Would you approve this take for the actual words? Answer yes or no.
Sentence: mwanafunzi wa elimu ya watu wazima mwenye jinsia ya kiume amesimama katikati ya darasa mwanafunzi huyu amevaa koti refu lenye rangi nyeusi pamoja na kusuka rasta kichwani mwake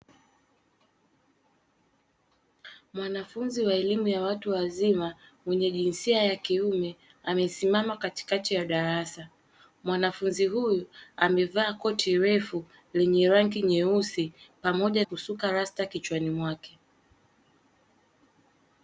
no